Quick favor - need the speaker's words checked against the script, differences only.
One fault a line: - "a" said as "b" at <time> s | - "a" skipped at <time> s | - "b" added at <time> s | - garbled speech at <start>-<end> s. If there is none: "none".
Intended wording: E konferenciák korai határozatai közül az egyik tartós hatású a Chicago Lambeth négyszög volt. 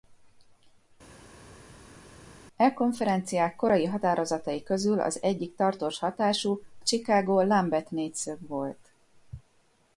- "a" skipped at 6.6 s